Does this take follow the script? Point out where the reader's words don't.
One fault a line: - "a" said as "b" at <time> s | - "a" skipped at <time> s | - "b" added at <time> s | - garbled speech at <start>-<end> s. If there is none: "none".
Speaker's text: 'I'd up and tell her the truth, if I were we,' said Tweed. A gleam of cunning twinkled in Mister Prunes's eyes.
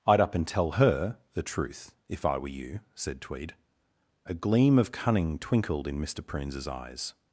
- "we" said as "you" at 2.5 s